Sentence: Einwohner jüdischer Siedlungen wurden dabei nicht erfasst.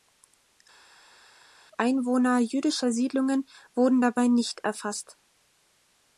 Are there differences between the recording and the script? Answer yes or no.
no